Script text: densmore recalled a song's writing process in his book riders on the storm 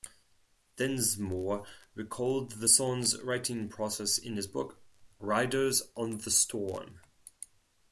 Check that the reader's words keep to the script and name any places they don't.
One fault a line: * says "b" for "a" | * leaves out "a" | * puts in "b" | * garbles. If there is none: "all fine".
* says "the" for "a"